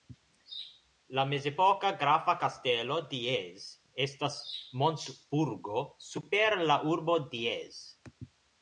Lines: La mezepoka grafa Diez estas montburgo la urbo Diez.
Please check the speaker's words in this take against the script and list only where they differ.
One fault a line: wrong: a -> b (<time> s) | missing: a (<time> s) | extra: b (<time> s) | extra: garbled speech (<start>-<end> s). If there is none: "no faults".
extra: kastelo (2.4 s)
extra: super (6.1 s)